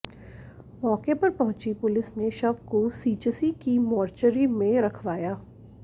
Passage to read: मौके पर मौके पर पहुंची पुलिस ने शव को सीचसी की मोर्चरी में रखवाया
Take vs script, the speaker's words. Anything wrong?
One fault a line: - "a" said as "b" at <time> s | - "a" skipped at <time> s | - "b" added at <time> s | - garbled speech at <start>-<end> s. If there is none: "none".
- "मौके पर" skipped at 1.3 s